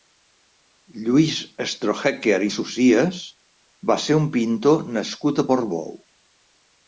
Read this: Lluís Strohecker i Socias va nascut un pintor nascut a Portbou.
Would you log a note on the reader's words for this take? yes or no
yes